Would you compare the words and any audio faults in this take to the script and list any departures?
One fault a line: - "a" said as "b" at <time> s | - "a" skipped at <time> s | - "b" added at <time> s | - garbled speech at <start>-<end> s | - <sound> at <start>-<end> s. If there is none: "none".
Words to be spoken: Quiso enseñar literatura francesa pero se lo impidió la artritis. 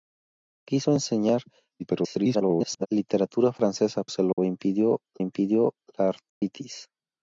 - garbled speech at 1.8-2.9 s
- "pero" skipped at 4.0 s
- dropout at 4.3-4.4 s
- "impidió" added at 5.2 s
- dropout at 6.3-6.4 s